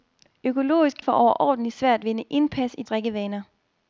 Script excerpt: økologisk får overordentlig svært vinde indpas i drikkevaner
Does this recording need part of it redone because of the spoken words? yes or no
no